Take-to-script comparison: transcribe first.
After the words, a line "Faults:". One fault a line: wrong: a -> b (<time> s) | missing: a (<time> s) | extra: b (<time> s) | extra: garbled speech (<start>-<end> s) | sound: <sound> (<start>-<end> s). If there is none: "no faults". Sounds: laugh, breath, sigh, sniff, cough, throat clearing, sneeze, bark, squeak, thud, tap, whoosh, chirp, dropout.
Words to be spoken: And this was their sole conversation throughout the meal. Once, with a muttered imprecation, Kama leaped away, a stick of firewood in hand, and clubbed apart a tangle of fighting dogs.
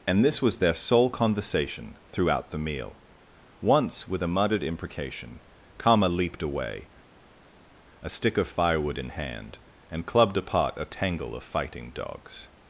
And this was their sole conversation throughout the meal. Once, with a muttered imprecation, Kama leaped away, a stick of firewood in hand, and clubbed apart a tangle of fighting dogs.
Faults:
no faults